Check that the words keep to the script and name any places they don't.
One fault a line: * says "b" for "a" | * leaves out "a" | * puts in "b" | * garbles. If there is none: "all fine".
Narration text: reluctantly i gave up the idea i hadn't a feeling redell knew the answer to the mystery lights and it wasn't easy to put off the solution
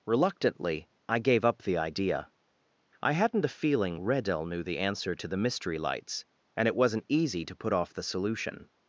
all fine